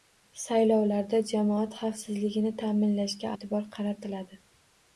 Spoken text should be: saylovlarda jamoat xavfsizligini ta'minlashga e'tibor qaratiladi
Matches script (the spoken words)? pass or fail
pass